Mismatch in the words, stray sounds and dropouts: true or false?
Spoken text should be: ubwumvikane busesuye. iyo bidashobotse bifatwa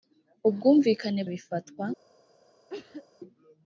true